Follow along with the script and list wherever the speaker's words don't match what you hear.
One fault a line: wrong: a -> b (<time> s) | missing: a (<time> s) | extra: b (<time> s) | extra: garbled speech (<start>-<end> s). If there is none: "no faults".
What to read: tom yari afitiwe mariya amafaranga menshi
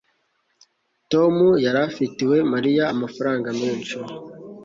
no faults